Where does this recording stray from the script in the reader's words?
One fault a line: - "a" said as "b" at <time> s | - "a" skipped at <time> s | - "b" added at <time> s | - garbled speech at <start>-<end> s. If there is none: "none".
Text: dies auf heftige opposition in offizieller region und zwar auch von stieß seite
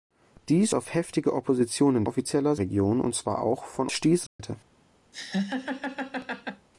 none